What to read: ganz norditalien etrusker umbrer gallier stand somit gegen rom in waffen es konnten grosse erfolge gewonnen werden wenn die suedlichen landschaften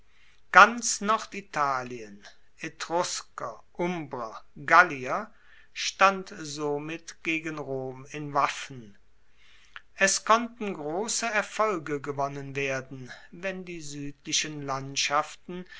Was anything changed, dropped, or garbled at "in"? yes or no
no